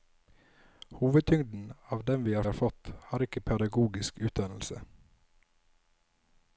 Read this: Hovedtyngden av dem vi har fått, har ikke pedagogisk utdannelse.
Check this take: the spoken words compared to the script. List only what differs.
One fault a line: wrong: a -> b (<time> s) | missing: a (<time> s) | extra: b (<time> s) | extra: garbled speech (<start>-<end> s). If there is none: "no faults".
extra: har (2.4 s)